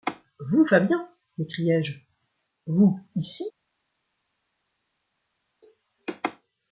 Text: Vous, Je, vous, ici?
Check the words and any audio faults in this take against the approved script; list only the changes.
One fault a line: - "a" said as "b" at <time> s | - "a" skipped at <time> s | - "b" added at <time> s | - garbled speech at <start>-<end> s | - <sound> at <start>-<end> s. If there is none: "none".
- "Fabian m'écriai" added at 0.6 s